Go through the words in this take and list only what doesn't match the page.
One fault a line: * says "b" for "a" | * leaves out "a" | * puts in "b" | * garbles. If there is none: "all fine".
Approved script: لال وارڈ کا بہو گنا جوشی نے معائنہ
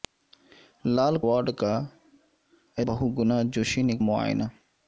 all fine